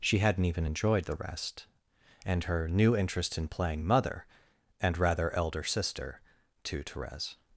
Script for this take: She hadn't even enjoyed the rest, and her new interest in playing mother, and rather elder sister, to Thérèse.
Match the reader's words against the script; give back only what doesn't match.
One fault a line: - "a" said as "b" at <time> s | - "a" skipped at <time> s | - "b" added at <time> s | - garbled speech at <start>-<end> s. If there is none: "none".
none